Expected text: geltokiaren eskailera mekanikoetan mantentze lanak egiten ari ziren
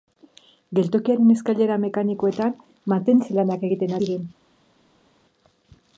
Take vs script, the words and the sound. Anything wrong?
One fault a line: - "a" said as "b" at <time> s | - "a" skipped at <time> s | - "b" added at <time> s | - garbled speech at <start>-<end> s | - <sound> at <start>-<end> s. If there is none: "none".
- "ari" skipped at 4.0 s